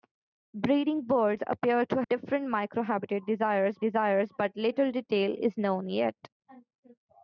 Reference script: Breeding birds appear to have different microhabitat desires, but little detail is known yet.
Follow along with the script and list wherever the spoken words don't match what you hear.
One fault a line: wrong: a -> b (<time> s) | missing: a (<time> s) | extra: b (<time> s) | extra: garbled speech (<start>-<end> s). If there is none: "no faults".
missing: have (2.0 s)
extra: desires (3.8 s)